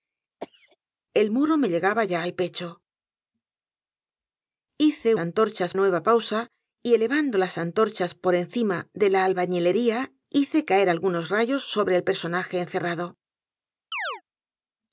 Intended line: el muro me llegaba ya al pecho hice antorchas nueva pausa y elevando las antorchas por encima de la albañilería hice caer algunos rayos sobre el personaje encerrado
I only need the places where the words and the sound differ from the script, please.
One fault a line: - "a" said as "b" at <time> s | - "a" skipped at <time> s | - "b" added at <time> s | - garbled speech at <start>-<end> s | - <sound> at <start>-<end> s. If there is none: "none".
- cough at 0.4-0.8 s
- chirp at 13.9-14.2 s